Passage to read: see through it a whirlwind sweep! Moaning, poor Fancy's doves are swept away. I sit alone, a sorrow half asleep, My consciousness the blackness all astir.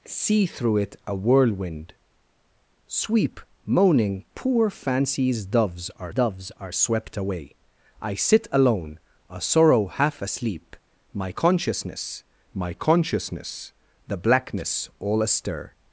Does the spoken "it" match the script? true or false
true